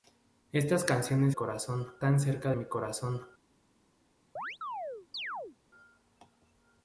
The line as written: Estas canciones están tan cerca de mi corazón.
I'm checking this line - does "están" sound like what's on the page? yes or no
no